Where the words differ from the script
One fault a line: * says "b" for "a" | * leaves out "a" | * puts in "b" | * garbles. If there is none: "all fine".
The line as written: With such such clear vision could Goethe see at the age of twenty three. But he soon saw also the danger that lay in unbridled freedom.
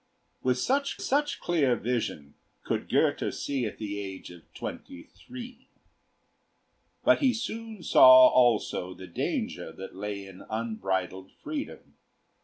all fine